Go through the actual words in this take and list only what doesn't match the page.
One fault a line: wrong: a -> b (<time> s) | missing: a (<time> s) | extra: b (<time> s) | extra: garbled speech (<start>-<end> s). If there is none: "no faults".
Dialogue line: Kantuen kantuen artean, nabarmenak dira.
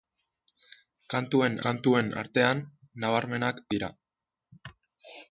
no faults